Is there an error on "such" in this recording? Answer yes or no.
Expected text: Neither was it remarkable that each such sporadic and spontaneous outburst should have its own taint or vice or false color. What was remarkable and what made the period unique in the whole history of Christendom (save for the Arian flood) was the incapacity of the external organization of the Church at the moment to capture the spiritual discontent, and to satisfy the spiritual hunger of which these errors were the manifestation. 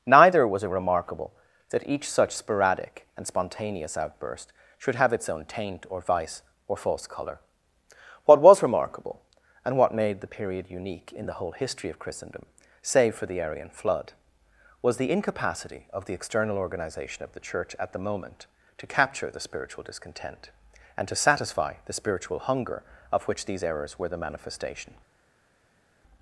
no